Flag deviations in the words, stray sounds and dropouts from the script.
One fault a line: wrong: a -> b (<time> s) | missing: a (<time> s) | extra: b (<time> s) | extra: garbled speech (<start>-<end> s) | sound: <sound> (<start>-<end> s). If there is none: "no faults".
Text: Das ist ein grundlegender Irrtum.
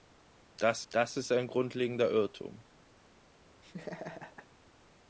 extra: das (0.9 s)
sound: laugh (3.6-4.5 s)